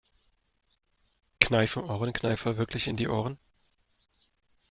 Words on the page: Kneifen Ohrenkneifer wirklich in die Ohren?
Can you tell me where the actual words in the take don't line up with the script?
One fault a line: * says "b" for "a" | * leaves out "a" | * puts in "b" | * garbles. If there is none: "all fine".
all fine